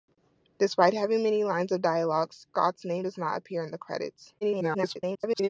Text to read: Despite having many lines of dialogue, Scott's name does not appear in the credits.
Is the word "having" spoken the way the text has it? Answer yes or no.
yes